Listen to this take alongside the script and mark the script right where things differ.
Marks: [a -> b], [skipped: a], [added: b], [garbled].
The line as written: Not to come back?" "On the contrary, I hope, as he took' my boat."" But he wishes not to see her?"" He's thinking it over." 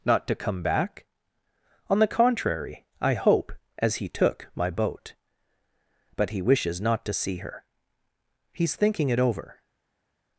Not to come back?" "On the contrary, I hope, as he took' my boat."" But he wishes not to see her?"" He's thinking it over."